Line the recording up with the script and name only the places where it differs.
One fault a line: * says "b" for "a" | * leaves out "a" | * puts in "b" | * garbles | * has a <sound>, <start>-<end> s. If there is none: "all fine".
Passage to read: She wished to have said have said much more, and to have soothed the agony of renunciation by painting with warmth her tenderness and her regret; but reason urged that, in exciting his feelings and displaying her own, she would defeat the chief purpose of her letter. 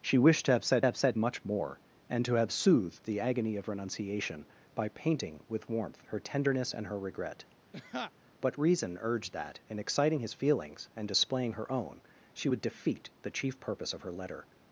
* has a laugh, 7.7-8.1 s